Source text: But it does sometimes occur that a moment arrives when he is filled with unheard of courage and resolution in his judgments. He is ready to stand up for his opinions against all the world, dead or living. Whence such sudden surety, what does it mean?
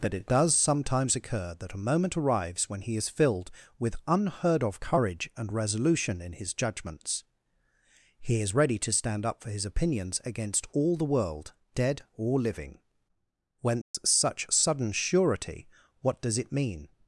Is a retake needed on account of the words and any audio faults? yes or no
yes